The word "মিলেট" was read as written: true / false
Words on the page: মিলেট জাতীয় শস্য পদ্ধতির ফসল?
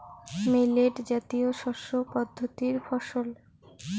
true